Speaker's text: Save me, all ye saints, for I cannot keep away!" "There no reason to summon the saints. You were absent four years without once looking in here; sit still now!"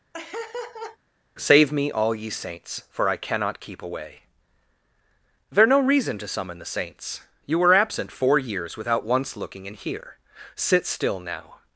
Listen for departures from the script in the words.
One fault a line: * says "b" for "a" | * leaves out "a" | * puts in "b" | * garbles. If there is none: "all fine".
all fine